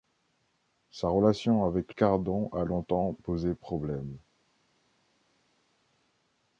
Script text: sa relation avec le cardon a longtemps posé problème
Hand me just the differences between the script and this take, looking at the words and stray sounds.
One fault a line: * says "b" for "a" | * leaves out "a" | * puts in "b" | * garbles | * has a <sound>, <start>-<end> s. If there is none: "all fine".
* leaves out "le"